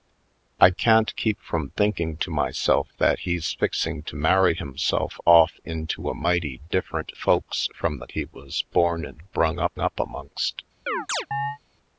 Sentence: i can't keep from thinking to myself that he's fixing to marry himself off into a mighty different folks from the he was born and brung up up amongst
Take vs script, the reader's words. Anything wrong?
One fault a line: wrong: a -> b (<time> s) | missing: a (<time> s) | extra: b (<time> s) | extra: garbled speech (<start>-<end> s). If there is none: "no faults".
no faults